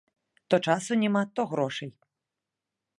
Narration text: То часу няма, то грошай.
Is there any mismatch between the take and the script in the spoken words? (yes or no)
no